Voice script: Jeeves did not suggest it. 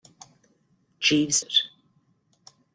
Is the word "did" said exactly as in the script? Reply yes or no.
no